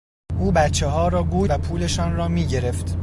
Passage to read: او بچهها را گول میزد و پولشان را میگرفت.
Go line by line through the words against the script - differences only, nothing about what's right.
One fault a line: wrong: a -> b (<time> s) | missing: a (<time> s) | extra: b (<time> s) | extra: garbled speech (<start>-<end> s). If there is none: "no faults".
missing: میزد (1.5 s)